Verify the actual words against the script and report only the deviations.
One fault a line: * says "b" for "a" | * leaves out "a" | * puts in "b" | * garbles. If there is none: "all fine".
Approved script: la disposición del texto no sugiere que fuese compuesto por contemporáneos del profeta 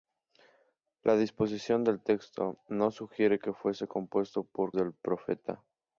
* leaves out "contemporáneos"